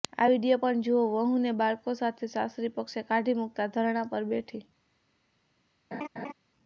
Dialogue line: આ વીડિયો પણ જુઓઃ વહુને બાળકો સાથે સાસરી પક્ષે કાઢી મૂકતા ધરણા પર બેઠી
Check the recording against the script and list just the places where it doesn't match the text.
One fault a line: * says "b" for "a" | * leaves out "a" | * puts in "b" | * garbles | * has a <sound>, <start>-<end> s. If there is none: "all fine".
* has a laugh, 5.9-6.3 s